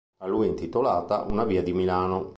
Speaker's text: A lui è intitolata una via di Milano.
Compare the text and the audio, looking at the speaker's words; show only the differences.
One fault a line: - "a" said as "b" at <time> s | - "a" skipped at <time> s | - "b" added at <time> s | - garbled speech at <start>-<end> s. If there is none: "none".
none